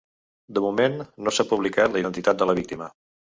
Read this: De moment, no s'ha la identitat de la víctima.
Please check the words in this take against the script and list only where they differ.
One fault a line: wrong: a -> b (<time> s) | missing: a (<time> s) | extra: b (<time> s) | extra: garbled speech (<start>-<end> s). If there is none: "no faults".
extra: publicat (1.5 s)